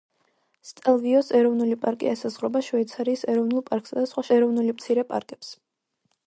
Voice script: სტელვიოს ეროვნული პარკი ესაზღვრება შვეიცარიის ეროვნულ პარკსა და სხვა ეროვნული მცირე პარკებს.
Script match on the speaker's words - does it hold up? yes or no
yes